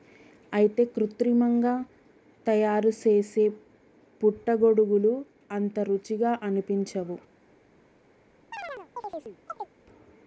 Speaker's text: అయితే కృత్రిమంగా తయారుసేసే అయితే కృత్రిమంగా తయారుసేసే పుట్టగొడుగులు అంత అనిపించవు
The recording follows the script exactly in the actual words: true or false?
false